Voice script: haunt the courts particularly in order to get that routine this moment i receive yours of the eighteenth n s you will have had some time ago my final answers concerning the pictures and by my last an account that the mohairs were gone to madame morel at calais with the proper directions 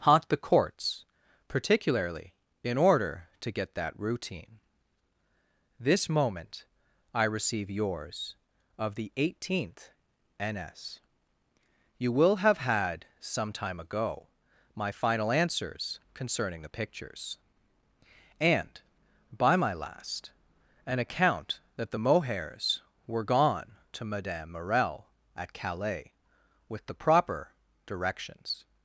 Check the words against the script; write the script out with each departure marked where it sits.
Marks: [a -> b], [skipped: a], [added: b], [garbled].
haunt the courts particularly in order to get that routine this moment i receive yours of the eighteenth n s you will have had some time ago my final answers concerning the pictures and by my last an account that the mohairs were gone to madame morel at calais with the proper directions